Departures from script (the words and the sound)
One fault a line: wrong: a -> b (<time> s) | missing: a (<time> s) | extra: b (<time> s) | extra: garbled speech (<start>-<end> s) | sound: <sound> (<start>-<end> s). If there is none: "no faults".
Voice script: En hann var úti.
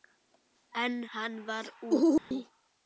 sound: dropout (2.2-2.3 s)